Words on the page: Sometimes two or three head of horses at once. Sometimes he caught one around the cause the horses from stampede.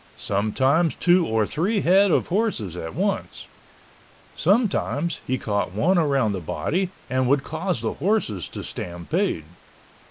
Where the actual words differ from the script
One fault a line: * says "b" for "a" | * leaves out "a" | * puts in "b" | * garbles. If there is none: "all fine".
* puts in "body and would"
* says "to" for "from"